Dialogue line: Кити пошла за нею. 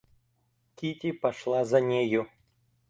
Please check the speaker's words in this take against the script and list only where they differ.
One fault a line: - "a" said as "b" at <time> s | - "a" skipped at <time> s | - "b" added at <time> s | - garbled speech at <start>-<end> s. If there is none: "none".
none